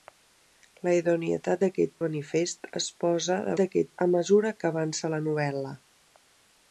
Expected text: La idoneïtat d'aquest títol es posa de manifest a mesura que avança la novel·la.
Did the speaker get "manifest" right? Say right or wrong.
wrong